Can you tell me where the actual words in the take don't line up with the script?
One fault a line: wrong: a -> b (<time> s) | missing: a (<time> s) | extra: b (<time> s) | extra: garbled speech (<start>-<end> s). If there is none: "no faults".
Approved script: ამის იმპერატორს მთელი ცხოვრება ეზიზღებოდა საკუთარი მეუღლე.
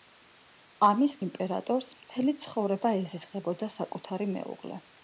no faults